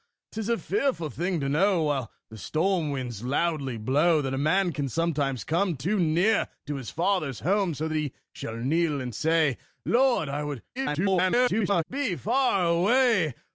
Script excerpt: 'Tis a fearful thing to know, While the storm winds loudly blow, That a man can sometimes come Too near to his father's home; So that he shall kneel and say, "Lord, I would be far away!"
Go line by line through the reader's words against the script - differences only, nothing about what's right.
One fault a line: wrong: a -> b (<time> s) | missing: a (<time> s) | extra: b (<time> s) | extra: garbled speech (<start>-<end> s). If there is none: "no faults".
extra: garbled speech (10.8-11.8 s)